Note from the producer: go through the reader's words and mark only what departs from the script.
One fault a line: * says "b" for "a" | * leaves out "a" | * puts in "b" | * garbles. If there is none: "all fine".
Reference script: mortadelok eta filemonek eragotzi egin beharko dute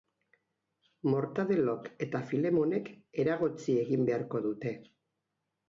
all fine